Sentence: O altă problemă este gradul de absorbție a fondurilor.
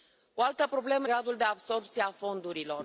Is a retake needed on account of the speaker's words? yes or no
yes